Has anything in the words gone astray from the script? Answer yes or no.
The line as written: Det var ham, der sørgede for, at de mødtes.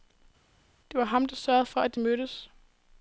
no